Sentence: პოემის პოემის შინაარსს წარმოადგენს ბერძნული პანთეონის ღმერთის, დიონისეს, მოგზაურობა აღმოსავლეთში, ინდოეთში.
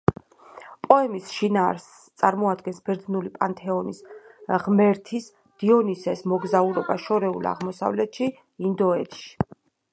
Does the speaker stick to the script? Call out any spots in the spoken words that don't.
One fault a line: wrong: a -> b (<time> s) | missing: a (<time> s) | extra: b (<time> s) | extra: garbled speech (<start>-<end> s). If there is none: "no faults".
missing: პოემის (1.2 s)
extra: შორეულ (7.0 s)